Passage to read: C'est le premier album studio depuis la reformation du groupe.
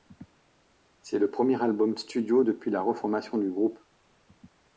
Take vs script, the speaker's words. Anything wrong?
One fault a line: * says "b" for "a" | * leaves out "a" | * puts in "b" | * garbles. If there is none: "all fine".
all fine